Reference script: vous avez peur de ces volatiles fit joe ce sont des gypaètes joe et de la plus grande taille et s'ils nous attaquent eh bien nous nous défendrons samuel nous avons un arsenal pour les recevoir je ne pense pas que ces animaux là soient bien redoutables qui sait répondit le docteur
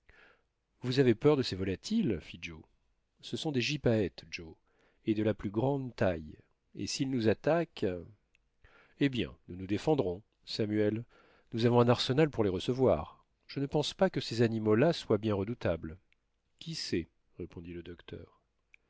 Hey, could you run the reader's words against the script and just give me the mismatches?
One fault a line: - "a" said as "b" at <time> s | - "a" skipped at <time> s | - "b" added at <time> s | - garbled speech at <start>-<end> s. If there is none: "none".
none